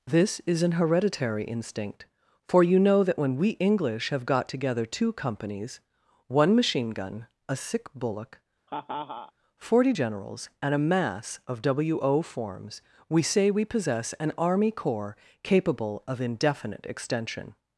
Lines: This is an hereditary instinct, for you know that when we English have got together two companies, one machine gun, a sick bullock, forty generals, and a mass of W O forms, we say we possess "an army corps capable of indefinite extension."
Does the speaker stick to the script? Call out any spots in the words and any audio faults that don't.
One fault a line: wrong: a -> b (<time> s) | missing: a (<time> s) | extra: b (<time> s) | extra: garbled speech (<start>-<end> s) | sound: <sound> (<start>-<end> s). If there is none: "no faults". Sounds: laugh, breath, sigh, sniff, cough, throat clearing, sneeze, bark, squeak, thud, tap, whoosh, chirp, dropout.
sound: laugh (8.7-9.3 s)